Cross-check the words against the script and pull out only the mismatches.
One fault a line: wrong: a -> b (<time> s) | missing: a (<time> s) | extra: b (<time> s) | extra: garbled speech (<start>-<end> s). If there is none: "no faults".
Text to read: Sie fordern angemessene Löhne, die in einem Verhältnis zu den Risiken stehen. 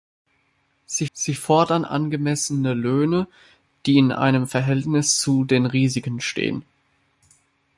extra: sie (1.1 s)